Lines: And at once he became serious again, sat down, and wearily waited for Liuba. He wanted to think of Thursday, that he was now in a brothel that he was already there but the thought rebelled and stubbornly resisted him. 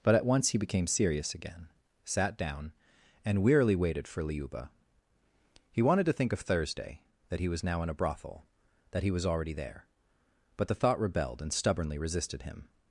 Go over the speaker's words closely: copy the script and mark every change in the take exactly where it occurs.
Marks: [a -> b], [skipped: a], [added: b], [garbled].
[And -> But] at once he became serious again, sat down, and wearily waited for Liuba. He wanted to think of Thursday, that he was now in a brothel that he was already there but the thought rebelled and stubbornly resisted him.